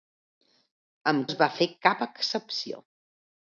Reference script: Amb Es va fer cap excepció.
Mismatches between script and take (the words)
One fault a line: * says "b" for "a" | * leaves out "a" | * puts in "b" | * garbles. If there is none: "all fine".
all fine